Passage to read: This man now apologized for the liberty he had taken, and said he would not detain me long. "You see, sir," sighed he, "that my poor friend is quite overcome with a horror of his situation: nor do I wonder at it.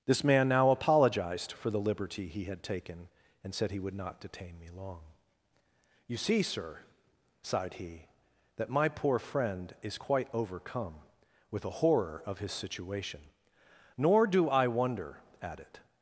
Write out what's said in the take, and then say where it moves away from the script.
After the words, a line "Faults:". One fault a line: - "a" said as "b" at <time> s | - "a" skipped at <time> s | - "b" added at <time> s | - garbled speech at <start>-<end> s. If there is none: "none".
This man now apologized for the liberty he had taken, and said he would not detain me long. "You see, sir," sighed he, "that my poor friend is quite overcome with a horror of his situation: nor do I wonder at it.
Faults:
none